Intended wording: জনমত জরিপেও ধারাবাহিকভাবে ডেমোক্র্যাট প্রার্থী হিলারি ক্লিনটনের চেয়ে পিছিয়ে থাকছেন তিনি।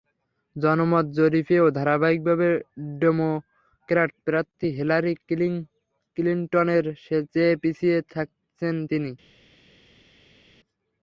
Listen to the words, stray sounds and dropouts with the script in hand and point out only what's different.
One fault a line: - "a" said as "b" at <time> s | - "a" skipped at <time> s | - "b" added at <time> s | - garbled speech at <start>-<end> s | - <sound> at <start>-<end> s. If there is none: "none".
none